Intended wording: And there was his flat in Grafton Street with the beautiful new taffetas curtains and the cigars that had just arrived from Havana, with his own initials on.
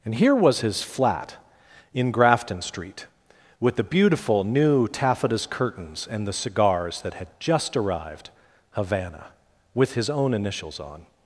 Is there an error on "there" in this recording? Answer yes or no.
yes